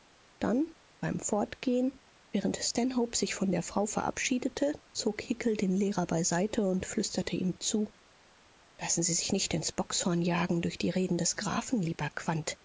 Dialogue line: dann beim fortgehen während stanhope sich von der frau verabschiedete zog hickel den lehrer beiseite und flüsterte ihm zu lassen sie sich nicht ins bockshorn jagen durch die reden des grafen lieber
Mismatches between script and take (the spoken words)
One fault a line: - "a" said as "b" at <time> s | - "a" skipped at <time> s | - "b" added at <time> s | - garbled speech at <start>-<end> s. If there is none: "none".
none